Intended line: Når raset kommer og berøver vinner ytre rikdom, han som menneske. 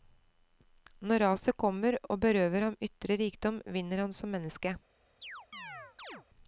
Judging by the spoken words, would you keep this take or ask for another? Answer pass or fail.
fail